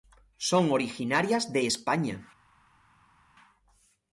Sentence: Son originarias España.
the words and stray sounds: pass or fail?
fail